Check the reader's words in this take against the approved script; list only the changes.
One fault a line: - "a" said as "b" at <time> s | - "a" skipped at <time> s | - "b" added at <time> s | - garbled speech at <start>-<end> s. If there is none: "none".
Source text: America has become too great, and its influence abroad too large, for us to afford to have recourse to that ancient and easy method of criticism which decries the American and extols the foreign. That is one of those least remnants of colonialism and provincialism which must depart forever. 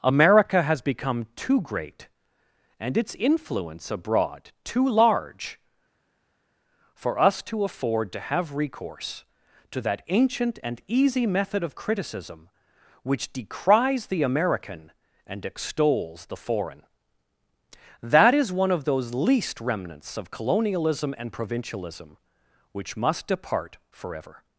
none